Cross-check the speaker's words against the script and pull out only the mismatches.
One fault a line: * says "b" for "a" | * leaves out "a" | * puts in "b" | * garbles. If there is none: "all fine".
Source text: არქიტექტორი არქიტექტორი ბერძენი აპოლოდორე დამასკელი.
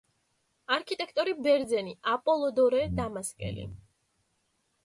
* leaves out "არქიტექტორი"